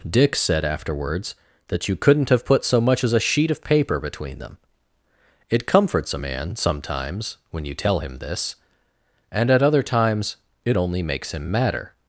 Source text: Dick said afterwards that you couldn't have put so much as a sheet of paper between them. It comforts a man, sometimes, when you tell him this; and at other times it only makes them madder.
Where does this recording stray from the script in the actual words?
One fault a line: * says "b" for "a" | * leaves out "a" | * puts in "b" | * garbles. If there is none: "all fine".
* says "him" for "them"